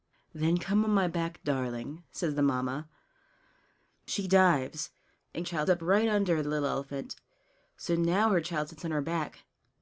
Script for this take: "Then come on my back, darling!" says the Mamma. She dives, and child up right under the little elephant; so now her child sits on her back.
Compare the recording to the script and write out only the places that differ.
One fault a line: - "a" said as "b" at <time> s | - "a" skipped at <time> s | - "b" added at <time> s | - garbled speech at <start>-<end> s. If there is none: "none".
none